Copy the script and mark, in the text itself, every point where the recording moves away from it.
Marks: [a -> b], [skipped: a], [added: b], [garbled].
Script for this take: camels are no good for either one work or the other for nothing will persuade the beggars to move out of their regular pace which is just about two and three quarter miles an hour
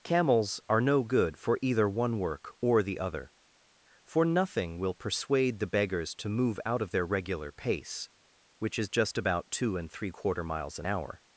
camels are no good for either one work or the other for nothing will persuade the beggars to move out of their regular pace which is just about two and three quarter miles an hour